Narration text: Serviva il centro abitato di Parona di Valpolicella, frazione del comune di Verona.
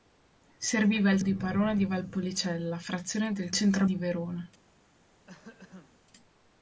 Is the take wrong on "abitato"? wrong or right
wrong